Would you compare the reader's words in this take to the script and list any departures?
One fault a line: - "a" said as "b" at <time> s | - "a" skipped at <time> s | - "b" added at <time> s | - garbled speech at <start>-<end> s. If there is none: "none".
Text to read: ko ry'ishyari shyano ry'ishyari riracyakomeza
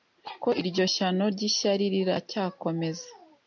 - "ry'ishyari" said as "iryo" at 0.6 s